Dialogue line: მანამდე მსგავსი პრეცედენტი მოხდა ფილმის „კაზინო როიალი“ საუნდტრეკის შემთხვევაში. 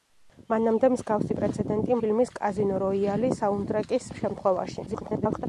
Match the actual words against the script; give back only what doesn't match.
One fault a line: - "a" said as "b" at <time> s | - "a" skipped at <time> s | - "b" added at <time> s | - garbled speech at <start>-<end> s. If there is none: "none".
- "მოხდა" skipped at 2.0 s
- garbled speech at 4.9-5.5 s